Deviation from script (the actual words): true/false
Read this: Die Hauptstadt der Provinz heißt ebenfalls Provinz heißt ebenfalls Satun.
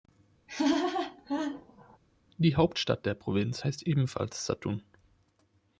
true